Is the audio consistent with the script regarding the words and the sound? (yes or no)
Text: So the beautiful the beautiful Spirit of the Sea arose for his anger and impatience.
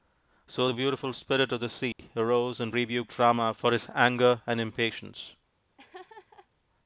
no